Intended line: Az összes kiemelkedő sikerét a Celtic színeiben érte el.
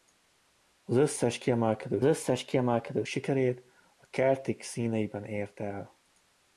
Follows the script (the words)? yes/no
no